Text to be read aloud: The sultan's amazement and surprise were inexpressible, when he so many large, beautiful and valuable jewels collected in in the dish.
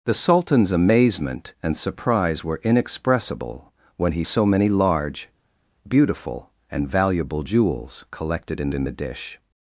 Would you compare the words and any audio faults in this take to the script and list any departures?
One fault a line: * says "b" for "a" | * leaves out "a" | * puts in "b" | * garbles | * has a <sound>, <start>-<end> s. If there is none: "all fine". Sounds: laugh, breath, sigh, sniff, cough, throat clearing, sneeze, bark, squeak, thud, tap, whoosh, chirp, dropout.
all fine